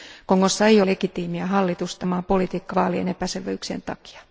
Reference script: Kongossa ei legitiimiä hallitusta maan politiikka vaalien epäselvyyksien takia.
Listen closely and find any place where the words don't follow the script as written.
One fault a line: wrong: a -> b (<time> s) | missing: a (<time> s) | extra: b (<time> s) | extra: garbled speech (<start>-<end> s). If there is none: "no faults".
no faults